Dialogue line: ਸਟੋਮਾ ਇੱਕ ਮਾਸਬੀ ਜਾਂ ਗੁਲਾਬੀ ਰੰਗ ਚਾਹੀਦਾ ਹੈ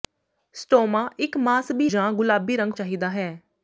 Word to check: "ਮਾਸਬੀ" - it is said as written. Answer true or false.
true